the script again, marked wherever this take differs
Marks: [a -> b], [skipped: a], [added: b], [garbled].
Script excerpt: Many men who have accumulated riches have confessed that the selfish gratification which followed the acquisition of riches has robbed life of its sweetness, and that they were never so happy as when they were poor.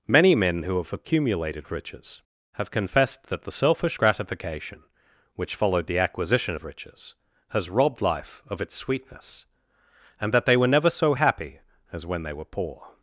Many men who have accumulated riches have confessed that the selfish gratification which followed the acquisition of riches has robbed life of its sweetness, and that they were never so happy as when they were poor.